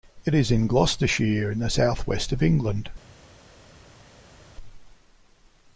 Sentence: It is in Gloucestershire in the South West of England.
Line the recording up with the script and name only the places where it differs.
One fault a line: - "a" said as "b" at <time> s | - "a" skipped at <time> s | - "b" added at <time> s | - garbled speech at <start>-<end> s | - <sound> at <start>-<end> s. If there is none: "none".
none